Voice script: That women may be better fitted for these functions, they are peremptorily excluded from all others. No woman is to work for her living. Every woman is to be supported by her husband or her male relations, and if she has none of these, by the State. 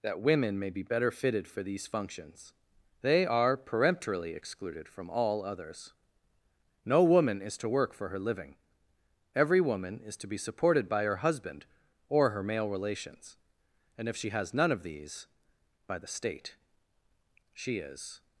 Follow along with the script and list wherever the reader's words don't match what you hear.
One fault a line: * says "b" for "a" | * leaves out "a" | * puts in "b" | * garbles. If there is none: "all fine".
* puts in "She is"